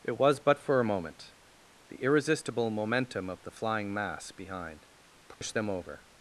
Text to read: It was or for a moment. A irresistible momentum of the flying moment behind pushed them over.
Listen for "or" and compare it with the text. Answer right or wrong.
wrong